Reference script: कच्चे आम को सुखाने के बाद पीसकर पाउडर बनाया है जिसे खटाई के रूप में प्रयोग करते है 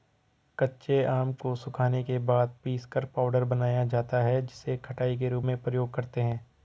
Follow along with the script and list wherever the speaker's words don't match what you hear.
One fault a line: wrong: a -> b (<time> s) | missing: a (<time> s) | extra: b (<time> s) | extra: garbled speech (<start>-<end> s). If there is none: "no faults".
extra: जाता (3.9 s)